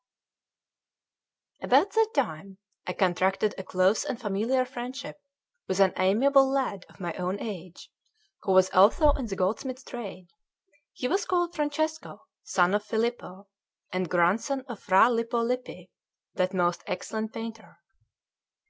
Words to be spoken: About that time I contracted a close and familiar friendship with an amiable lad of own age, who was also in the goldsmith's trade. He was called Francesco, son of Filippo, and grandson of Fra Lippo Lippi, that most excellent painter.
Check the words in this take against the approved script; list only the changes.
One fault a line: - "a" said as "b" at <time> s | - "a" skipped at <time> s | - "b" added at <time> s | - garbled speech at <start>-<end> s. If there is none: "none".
- "my" added at 7.0 s